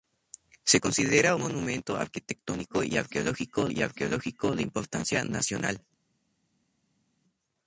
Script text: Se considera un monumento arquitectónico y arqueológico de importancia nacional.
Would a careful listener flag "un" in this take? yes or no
yes